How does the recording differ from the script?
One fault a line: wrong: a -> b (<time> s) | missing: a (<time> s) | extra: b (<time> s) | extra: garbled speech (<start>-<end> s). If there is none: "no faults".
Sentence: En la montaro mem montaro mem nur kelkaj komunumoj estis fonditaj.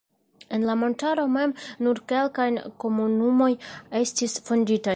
missing: montaro mem (1.5 s)